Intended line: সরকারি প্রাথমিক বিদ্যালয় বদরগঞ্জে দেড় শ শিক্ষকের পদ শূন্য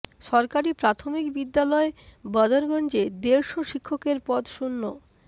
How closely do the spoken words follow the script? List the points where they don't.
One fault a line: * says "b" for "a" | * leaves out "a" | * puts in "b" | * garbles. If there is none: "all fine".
all fine